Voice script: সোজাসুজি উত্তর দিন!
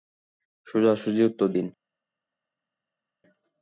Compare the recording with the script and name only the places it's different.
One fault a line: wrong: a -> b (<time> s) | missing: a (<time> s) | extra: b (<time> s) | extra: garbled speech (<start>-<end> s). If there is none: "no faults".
no faults